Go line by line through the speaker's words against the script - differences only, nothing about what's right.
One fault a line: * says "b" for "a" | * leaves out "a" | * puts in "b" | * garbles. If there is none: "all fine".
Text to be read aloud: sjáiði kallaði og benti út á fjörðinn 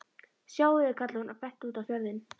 * puts in "hún"